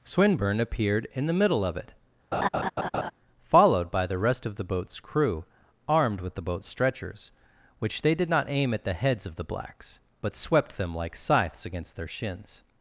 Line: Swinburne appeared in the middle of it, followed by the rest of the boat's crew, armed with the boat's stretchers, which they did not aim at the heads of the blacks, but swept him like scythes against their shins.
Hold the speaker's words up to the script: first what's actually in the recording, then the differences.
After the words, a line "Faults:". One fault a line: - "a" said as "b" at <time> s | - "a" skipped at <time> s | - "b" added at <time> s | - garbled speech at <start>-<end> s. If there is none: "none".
Swinburne appeared in the middle of it, followed by the rest of the boat's crew, armed with the boat's stretchers, which they did not aim at the heads of the blacks, but swept them like scythes against their shins.
Faults:
- "him" said as "them" at 10.8 s